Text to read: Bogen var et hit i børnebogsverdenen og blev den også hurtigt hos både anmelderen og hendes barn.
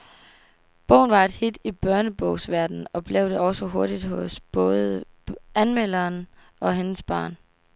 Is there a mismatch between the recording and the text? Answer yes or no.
yes